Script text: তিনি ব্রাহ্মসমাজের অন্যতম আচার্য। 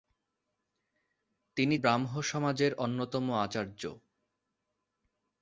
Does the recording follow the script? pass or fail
pass